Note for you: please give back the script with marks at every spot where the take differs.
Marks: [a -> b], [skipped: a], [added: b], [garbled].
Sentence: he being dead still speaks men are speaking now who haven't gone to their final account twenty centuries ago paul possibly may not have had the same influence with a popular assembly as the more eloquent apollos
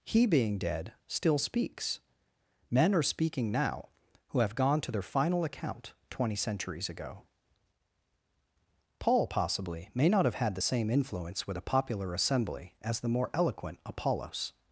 he being dead still speaks men are speaking now who [haven't -> have] gone to their final account twenty centuries ago paul possibly may not have had the same influence with a popular assembly as the more eloquent apollos